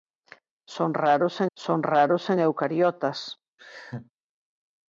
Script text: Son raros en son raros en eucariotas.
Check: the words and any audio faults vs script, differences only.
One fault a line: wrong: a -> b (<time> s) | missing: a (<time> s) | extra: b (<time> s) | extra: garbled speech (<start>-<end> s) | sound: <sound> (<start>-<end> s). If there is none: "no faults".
sound: laugh (3.6-4.1 s)